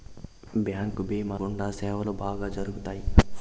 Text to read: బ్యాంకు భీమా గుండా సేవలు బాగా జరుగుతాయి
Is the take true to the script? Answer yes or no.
yes